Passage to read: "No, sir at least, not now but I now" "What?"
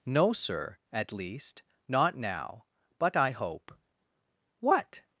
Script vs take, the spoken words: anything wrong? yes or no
yes